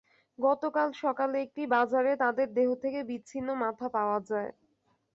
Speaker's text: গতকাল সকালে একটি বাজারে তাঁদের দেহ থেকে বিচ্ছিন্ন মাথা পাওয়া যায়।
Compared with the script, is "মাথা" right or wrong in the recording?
right